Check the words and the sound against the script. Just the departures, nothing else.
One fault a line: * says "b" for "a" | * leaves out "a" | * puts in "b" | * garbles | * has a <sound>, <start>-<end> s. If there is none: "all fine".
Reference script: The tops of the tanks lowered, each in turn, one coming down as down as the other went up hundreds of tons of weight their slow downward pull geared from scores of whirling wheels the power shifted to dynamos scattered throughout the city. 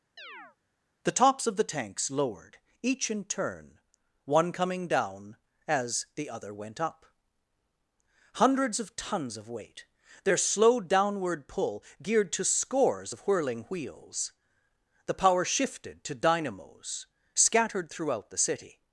* has a chirp, 0.2-0.6 s
* leaves out "down as"
* says "to" for "from"